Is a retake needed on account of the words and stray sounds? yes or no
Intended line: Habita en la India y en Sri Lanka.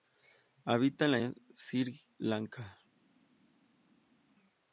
yes